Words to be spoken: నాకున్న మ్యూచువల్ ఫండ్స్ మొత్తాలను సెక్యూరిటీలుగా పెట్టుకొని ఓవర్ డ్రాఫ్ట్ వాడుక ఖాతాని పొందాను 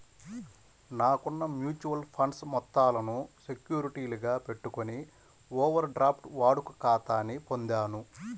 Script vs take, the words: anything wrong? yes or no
no